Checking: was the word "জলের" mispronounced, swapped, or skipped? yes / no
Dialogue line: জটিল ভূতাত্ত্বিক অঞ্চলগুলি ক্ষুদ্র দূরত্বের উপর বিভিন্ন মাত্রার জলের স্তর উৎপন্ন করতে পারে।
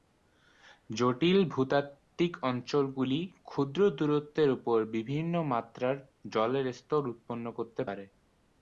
no